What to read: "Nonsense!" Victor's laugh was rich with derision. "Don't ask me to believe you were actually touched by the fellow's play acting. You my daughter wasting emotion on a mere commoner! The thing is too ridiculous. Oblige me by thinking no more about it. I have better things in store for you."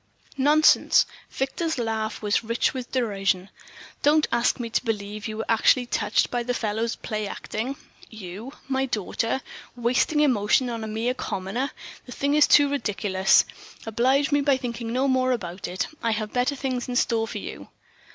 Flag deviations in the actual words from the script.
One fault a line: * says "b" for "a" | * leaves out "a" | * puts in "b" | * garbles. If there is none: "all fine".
all fine